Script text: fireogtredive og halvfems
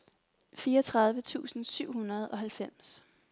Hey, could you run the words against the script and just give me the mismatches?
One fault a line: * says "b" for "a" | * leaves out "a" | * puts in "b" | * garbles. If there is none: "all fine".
* puts in "tusind syv hundrede"